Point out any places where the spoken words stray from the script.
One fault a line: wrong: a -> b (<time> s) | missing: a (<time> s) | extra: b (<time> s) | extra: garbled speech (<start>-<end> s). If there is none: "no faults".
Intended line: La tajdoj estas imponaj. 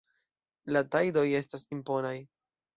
no faults